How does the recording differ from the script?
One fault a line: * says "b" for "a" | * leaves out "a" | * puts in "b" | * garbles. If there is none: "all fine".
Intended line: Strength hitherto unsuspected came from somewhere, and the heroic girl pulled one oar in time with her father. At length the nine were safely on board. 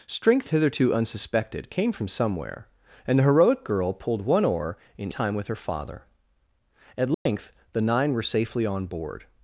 all fine